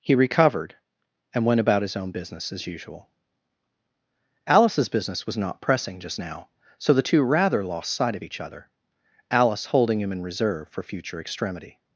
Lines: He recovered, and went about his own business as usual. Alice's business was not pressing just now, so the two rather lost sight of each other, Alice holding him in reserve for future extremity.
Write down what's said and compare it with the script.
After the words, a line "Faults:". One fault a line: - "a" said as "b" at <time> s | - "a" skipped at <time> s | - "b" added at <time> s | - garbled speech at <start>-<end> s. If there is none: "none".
He recovered, and went about his own business as usual. Alice's business was not pressing just now, so the two rather lost sight of each other, Alice holding him in reserve for future extremity.
Faults:
none